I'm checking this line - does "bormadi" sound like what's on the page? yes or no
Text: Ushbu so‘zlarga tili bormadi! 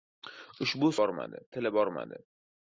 yes